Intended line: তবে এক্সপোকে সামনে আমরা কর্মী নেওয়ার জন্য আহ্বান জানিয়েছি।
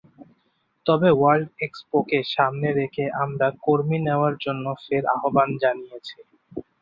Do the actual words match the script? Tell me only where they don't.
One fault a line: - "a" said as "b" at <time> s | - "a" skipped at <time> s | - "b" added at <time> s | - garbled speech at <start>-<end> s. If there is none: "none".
- "ওয়ার্ল্ড" added at 1.1 s
- "রেখে" added at 2.8 s
- "ফের" added at 4.8 s